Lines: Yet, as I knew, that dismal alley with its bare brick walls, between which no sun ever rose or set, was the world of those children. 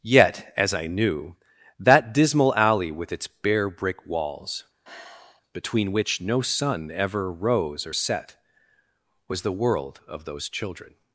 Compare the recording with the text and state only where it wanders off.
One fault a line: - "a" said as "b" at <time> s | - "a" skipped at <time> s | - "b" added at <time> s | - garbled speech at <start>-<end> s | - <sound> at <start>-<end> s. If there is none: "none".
- sigh at 4.8-5.4 s